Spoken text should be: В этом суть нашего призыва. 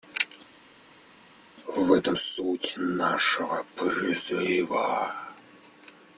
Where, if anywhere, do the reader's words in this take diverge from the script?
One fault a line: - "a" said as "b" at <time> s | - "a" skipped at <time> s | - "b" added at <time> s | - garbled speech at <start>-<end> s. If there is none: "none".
none